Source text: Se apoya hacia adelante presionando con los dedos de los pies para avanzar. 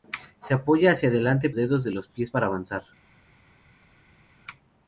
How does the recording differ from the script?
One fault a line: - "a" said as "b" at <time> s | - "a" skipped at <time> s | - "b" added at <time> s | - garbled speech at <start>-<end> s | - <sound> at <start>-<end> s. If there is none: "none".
- "presionando con los" skipped at 1.5 s